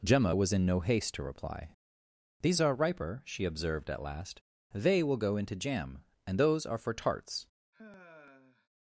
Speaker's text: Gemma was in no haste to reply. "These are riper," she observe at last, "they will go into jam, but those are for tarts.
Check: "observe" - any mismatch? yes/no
yes